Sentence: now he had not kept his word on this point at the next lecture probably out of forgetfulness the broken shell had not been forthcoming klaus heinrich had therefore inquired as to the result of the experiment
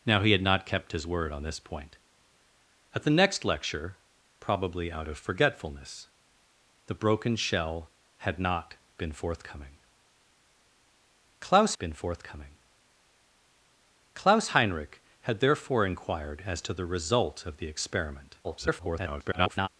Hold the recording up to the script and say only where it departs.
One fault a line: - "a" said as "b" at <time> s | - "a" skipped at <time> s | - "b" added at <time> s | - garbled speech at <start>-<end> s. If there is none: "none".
- "been forthcoming klaus" added at 11.8 s
- garbled speech at 18.4-19.7 s